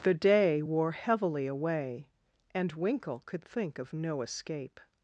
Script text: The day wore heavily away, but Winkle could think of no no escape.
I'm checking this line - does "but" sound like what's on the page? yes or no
no